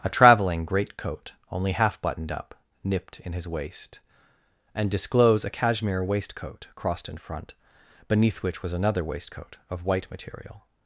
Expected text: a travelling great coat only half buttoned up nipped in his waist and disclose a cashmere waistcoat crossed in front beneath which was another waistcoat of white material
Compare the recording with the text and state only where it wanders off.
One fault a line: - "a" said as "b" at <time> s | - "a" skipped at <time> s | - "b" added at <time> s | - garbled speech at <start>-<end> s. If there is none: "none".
none